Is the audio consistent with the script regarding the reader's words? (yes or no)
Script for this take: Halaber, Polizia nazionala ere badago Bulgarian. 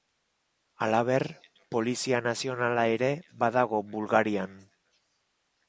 yes